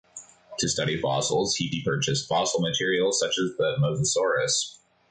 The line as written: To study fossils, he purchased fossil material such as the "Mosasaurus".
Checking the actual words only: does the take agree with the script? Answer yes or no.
no